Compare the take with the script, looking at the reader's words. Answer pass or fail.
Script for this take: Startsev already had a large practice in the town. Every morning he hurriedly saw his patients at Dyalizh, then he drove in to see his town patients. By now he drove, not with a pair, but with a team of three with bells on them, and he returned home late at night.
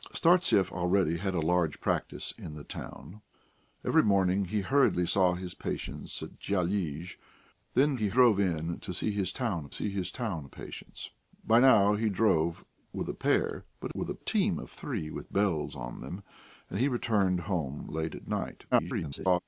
fail